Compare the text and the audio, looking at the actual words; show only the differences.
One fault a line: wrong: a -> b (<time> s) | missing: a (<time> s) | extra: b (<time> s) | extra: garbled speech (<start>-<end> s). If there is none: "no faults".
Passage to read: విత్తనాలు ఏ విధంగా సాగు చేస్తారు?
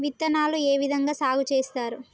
no faults